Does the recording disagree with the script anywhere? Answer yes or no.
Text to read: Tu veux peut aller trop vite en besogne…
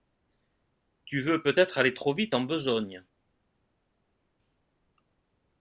yes